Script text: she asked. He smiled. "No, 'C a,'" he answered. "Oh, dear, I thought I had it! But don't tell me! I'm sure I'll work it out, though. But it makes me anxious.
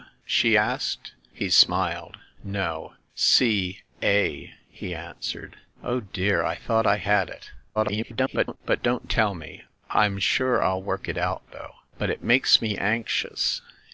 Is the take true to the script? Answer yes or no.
no